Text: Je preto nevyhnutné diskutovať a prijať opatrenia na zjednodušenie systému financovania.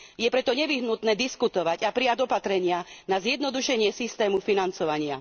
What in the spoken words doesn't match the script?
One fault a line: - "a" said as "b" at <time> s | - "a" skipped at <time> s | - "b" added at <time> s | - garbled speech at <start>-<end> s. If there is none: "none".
none